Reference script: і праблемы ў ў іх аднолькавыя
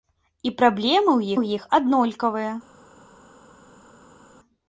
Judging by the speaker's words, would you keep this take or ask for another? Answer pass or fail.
pass